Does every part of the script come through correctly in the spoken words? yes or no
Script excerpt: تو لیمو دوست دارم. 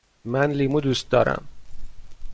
no